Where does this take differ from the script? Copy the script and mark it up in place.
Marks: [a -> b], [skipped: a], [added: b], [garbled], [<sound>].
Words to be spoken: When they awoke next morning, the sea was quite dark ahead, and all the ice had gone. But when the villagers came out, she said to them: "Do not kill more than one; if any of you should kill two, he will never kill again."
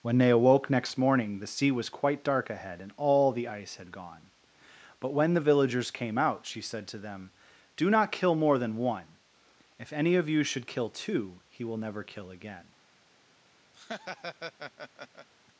When they awoke next morning, the sea was quite dark ahead, and all the ice had gone. But when the villagers came out, she said to them: "Do not kill more than one; if any of you should kill two, he will never kill again." [laugh]